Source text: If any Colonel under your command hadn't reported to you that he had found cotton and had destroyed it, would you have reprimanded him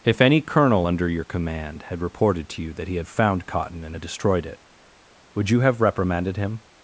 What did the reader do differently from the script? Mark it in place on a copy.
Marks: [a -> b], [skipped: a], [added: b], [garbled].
If any Colonel under your command [hadn't -> had] reported to you that he had found cotton and had destroyed it, would you have reprimanded him